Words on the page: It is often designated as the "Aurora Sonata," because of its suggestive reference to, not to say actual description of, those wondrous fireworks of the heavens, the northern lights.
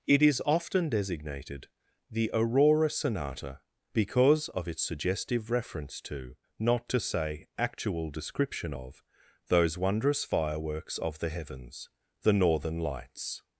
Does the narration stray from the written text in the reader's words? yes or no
yes